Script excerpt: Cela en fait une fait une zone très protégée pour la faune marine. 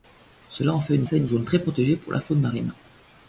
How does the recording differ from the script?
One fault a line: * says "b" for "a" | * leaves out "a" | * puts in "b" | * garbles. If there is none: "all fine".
all fine